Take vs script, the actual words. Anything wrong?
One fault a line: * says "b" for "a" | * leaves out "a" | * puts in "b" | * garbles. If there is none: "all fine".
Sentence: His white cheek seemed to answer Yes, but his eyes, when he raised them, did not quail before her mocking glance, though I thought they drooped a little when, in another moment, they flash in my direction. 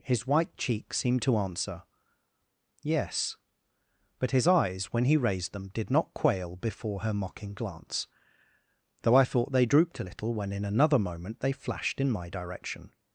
* says "flashed" for "flash"